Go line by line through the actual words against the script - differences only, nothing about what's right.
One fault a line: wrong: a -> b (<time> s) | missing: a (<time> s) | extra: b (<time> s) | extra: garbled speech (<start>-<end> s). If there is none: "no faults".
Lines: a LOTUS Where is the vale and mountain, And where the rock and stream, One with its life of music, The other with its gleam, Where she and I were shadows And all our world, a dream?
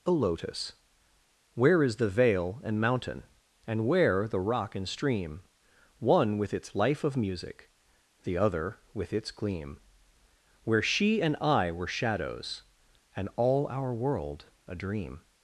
no faults